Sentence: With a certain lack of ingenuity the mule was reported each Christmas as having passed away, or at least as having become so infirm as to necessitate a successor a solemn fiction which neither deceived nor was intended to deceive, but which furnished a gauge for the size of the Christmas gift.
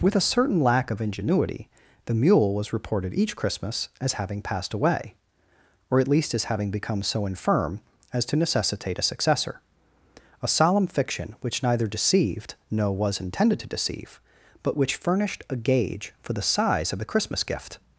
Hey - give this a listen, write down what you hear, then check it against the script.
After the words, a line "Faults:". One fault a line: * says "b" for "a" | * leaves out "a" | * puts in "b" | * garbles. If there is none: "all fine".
With a certain lack of ingenuity the mule was reported each Christmas as having passed away, or at least as having become so infirm as to necessitate a successor a solemn fiction which neither deceived no was intended to deceive, but which furnished a gauge for the size of the Christmas gift.
Faults:
* says "no" for "nor"